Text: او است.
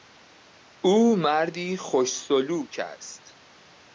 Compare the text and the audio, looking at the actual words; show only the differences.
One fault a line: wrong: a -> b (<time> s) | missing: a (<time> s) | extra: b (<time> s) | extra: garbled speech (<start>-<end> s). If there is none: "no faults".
extra: مردی خوش سلوک (1.1 s)